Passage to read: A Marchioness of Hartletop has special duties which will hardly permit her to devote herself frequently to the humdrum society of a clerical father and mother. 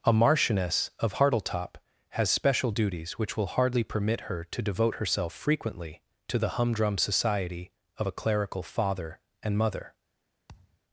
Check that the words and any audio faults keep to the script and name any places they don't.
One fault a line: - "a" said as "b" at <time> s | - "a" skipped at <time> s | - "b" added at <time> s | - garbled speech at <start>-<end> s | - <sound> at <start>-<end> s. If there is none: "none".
- thud at 10.5-10.8 s